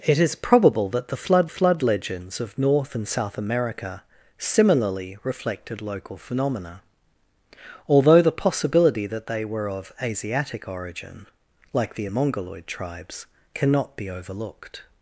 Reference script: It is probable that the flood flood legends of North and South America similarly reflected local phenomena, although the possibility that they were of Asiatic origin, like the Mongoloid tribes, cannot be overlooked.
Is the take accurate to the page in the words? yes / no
yes